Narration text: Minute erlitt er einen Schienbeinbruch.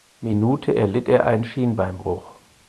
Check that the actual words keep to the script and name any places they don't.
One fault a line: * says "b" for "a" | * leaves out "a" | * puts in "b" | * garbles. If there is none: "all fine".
all fine